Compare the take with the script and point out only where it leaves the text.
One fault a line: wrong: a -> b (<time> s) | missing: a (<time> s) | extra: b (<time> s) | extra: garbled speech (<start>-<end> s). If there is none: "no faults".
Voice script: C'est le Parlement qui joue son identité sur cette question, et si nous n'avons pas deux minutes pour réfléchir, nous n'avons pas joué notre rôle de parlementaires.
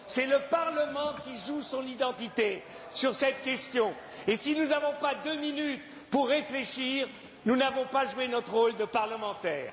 no faults